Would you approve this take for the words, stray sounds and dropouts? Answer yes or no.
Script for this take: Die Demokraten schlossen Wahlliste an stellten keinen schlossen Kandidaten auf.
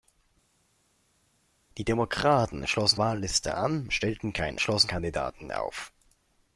yes